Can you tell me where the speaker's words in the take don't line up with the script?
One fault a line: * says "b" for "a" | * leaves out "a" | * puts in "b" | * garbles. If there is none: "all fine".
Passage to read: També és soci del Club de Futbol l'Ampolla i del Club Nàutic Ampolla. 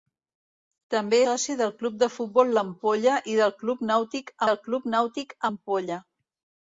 * leaves out "és"
* puts in "del Club Nàutic"